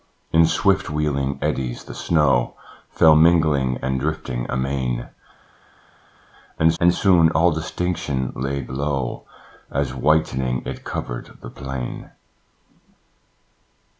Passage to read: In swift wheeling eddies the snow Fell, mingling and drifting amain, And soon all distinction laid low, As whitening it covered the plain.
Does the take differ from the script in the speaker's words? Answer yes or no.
yes